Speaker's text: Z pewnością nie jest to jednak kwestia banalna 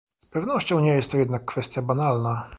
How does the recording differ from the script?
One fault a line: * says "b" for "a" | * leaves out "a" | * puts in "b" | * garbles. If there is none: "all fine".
all fine